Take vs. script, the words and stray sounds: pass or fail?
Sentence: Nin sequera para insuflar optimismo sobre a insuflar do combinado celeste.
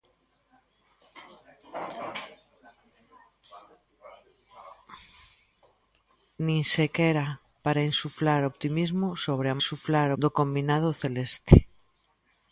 pass